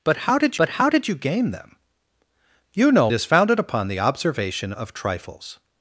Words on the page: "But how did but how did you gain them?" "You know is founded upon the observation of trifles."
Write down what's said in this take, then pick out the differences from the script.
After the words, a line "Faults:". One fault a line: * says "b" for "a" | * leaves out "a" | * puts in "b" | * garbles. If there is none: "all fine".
"But how did but how did you gain them?" "You know is founded upon the observation of trifles."
Faults:
all fine